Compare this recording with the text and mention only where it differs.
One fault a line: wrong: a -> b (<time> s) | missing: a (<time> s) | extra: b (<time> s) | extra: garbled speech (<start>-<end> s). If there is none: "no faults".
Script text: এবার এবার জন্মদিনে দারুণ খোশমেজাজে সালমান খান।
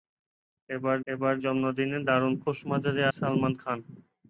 no faults